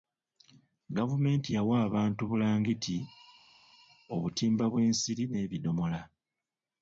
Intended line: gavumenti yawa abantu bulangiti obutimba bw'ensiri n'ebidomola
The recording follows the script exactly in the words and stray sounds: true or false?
true